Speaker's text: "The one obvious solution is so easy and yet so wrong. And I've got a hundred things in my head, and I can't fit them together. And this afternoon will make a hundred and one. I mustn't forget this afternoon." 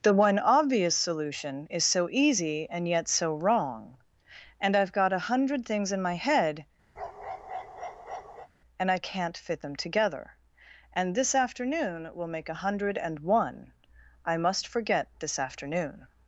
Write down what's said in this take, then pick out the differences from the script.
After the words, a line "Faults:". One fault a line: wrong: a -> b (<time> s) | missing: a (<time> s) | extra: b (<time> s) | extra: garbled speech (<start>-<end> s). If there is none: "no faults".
"The one obvious solution is so easy and yet so wrong. And I've got a hundred things in my head, and I can't fit them together. And this afternoon will make a hundred and one. I must forget this afternoon."
Faults:
wrong: mustn't -> must (14.3 s)